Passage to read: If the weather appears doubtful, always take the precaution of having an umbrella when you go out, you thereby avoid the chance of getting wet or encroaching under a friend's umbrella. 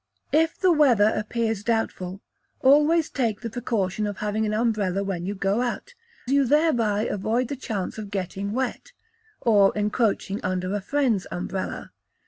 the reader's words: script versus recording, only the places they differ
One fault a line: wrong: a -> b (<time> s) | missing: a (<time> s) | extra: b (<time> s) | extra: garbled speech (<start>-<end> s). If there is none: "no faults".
no faults